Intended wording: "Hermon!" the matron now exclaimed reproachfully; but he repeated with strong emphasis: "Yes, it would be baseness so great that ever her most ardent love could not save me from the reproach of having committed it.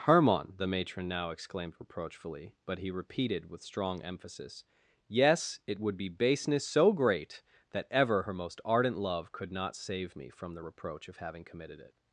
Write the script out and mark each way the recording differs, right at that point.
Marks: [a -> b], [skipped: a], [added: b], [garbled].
"Hermon!" the matron now exclaimed reproachfully; but he repeated with strong emphasis: "Yes, it would be baseness so great that ever her most ardent love could not save me from the reproach of having committed it.